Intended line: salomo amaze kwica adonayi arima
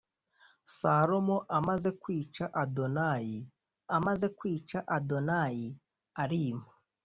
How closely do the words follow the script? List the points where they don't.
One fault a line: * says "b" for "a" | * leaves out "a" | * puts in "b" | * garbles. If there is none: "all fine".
* puts in "amaze kwica adonayi"